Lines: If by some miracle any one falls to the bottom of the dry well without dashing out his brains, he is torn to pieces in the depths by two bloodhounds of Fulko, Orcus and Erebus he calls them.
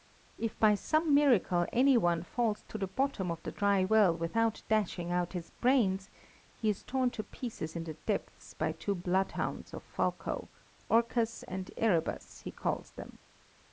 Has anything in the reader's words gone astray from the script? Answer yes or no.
no